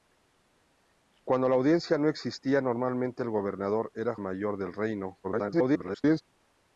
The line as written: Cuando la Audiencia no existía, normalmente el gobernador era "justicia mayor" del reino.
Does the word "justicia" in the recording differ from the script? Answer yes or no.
yes